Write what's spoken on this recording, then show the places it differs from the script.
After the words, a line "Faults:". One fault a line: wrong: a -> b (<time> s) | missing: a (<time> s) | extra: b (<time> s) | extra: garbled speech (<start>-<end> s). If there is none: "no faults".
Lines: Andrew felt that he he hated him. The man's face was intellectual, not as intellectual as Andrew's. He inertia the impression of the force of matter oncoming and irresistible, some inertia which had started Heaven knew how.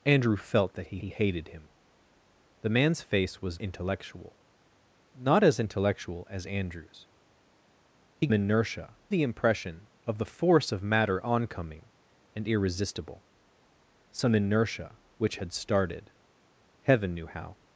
Andrew felt that he he hated him. The man's face was intellectual, not as intellectual as Andrew's. He inertia the impression of the force of matter oncoming and irresistible, some inertia which had started Heaven knew how.
Faults:
no faults